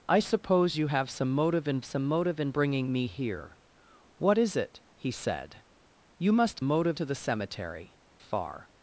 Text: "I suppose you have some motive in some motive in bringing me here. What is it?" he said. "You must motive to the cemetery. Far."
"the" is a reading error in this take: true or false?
false